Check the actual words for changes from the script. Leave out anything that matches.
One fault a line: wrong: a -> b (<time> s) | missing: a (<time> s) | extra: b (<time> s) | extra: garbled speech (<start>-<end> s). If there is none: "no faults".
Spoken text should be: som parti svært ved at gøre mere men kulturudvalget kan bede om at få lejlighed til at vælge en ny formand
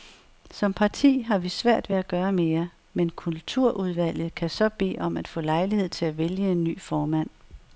extra: har vi (1.2 s)
extra: så (4.5 s)